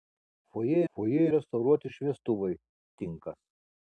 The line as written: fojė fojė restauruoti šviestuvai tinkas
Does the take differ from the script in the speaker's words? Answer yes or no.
no